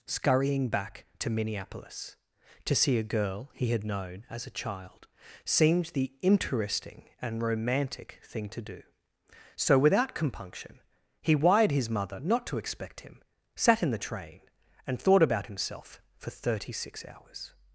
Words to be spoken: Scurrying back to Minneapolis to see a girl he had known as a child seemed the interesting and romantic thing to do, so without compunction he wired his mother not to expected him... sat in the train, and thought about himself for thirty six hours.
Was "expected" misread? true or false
true